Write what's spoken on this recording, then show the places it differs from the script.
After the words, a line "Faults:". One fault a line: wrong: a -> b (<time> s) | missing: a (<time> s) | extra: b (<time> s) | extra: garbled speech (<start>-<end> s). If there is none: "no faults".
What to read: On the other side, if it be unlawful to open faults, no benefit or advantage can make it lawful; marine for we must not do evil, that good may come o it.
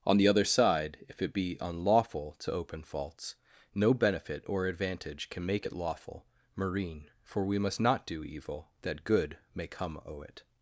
On the other side, if it be unlawful to open faults, no benefit or advantage can make it lawful; marine for we must not do evil, that good may come o it.
Faults:
no faults